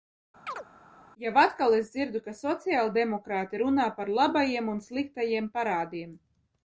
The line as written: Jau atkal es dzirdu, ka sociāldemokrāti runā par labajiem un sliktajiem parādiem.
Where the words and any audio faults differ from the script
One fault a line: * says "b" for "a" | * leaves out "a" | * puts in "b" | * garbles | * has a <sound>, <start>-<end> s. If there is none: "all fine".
* has a chirp, 0.5-0.6 s